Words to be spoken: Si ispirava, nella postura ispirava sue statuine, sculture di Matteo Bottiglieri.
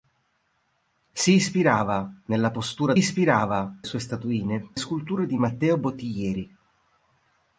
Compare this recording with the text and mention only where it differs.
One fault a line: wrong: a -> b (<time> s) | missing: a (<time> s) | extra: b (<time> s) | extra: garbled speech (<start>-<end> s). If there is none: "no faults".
no faults